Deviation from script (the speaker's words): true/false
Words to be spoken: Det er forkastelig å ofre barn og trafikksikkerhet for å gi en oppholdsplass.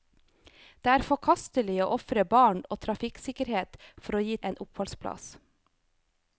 false